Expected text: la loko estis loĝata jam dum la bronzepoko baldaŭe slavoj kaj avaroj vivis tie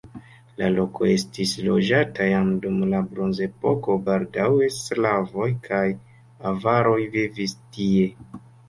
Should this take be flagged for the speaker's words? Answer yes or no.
no